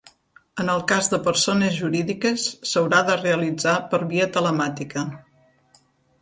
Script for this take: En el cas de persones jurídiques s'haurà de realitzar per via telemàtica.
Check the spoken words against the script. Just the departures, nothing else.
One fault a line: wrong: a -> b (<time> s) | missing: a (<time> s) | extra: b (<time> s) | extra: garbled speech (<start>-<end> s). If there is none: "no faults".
no faults